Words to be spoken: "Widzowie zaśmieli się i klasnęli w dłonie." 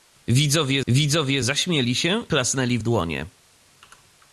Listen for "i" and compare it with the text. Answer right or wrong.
wrong